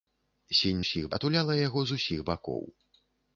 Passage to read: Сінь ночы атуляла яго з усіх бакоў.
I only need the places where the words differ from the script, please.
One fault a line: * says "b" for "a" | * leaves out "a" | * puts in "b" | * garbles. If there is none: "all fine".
* says "усіх" for "ночы"